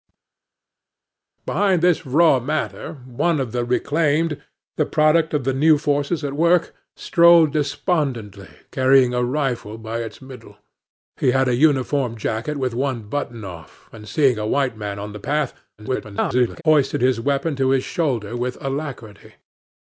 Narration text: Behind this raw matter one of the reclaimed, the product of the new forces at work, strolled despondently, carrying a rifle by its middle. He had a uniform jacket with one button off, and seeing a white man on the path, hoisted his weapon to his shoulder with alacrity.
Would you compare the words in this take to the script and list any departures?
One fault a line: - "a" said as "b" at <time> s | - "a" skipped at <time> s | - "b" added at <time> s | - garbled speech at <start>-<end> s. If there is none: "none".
- garbled speech at 15.8-16.6 s